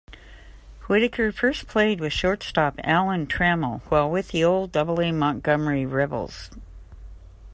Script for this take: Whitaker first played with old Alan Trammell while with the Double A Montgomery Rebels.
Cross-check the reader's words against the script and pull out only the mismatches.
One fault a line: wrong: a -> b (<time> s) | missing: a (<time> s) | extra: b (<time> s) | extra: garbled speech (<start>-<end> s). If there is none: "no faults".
wrong: old -> shortstop (2.1 s)
extra: old (4.5 s)